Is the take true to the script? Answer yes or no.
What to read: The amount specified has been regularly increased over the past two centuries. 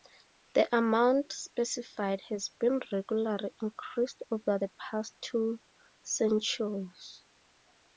yes